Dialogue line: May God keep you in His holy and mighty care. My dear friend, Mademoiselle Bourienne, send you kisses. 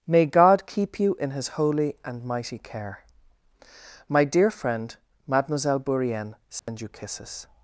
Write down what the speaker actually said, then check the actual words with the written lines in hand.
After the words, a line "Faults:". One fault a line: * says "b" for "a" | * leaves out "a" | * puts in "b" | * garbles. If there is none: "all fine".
May God keep you in His holy and mighty care. My dear friend, Mademoiselle Bourienne, send you kisses.
Faults:
all fine